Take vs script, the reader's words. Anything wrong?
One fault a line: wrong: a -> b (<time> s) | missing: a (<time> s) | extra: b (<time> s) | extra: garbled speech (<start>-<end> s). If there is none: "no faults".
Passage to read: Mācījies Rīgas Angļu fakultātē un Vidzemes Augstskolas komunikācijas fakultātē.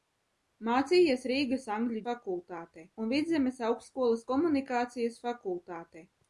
no faults